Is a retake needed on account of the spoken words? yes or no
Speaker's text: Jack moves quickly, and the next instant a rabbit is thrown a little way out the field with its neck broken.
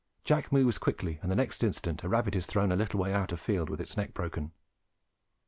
no